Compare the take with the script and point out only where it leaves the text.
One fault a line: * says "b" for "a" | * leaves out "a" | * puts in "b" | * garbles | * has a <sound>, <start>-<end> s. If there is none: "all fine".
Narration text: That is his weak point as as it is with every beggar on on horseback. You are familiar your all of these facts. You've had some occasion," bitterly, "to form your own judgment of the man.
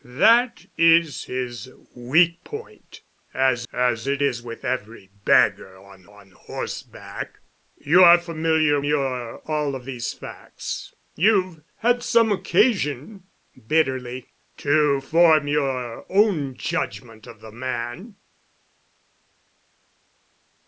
all fine